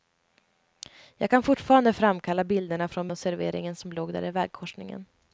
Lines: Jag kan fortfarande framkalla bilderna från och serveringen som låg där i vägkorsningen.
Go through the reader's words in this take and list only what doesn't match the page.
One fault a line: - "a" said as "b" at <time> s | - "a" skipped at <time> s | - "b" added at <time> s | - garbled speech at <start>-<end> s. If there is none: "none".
none